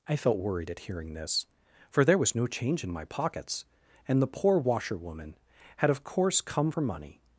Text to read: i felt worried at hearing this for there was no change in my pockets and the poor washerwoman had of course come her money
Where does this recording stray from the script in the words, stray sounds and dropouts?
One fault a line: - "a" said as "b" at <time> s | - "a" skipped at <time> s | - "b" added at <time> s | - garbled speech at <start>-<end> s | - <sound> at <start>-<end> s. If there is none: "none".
none